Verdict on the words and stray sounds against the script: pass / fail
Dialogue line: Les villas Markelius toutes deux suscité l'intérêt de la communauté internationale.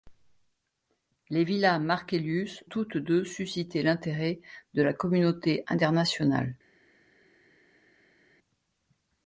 pass